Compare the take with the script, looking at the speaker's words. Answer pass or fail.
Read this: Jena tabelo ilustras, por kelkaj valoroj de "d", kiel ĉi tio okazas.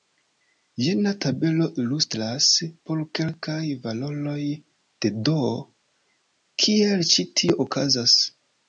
pass